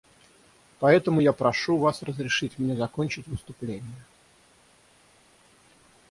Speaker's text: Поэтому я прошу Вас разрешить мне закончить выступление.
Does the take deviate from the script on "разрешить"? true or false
false